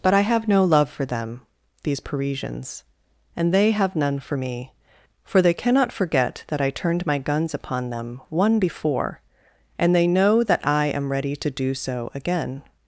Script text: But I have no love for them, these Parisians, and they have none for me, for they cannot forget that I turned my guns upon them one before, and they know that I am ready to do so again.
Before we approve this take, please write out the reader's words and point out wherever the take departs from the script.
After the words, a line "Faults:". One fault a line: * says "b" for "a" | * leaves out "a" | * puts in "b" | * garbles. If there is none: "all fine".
But I have no love for them, these Parisians, and they have none for me, for they cannot forget that I turned my guns upon them one before, and they know that I am ready to do so again.
Faults:
all fine